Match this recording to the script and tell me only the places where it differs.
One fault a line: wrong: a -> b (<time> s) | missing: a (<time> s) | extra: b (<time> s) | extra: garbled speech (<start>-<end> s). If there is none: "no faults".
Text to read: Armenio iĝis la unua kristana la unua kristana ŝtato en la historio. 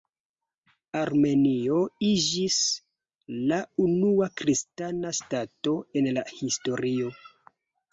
missing: la unua kristana (5.2 s)